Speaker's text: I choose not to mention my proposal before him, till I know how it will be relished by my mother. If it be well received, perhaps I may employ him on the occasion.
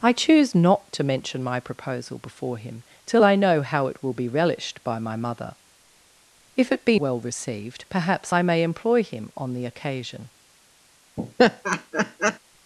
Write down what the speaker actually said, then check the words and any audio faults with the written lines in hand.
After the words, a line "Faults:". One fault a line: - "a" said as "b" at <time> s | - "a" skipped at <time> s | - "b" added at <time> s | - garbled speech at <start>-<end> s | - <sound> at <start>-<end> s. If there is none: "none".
I choose not to mention my proposal before him, till I know how it will be relished by my mother. If it be well received, perhaps I may employ him on the occasion.
Faults:
- laugh at 11.2-12.4 s